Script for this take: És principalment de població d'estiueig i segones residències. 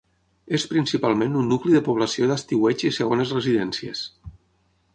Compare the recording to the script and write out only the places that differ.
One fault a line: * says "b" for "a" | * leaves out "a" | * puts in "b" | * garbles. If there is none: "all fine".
* puts in "un nucli"